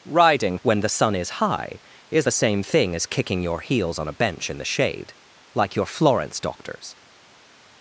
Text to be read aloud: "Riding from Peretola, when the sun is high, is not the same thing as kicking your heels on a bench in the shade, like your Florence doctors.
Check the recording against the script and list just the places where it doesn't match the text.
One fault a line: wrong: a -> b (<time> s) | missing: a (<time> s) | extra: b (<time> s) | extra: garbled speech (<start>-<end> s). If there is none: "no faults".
missing: from Peretola (0.6 s)
missing: not (2.3 s)